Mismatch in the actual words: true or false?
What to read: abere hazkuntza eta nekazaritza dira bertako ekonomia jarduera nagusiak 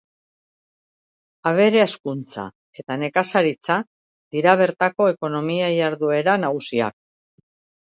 false